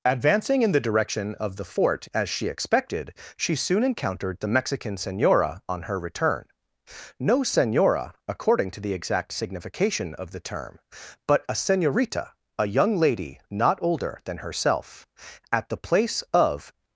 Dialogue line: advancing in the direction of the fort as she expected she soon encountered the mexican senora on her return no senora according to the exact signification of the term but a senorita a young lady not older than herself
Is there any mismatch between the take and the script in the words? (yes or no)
yes